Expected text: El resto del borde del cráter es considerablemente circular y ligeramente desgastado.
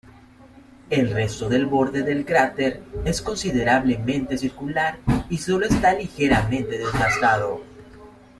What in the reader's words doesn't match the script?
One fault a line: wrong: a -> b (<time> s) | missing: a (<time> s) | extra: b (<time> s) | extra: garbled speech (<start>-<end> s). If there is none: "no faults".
extra: sólo está (5.4 s)